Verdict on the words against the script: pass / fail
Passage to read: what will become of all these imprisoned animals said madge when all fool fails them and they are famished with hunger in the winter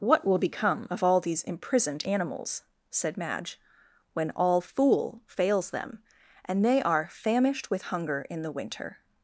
pass